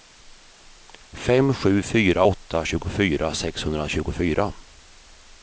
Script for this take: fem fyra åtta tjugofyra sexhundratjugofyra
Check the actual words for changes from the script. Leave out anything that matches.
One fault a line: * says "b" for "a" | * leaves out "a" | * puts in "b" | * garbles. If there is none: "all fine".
* puts in "sju"